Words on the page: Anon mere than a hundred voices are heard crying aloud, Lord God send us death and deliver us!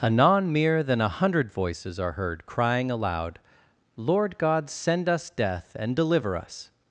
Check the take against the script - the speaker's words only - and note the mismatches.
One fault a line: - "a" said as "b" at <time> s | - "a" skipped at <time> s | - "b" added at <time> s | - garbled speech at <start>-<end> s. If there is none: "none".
none